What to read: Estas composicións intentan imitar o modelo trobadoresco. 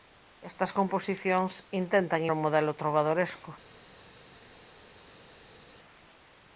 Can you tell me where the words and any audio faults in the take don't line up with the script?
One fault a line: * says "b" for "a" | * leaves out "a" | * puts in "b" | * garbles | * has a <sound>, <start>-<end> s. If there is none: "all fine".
* leaves out "imitar"